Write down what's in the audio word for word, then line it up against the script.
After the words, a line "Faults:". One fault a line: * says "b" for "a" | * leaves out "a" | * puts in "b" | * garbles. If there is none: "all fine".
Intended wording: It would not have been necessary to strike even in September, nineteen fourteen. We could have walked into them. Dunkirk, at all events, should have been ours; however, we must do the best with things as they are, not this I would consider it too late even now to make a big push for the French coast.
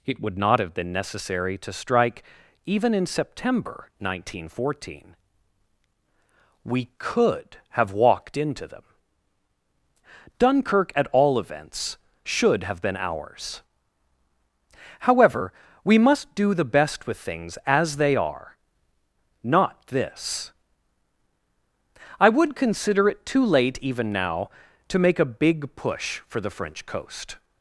It would not have been necessary to strike even in September, nineteen fourteen. We could have walked into them. Dunkirk, at all events, should have been ours; however, we must do the best with things as they are, not this I would consider it too late even now to make a big push for the French coast.
Faults:
all fine